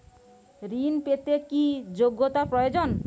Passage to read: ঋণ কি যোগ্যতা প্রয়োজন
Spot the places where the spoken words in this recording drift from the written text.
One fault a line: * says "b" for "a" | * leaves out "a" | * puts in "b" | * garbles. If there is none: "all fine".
* puts in "পেতে"